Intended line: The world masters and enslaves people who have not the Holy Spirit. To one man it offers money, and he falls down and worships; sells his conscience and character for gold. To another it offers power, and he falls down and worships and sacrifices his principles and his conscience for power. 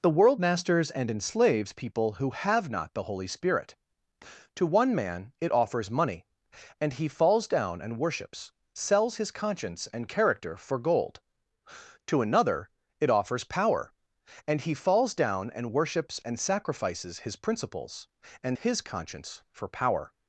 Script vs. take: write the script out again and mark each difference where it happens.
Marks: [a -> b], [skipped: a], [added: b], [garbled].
The world masters and enslaves people who have not the Holy Spirit. To one man it offers money, and he falls down and worships; sells his conscience and character for gold. To another it offers power, and he falls down and worships and sacrifices his principles and his conscience for power.